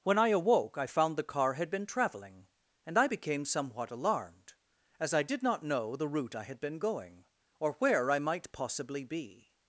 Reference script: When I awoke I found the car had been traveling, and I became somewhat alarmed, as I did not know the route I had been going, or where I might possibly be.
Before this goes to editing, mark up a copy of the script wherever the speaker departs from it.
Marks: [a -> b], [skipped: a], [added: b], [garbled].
When I awoke I found the car had been traveling, and I became somewhat alarmed, as I did not know the route I had been going, or where I might possibly be.